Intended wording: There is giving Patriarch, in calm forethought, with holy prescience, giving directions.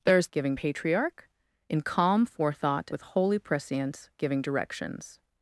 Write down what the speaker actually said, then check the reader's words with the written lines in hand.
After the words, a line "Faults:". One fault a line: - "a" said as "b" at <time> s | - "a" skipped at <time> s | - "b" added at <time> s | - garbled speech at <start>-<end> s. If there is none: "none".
There is giving Patriarch, in calm forethought, with holy prescience, giving directions.
Faults:
none